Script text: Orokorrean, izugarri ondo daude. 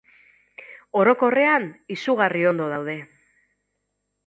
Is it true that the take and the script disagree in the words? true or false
false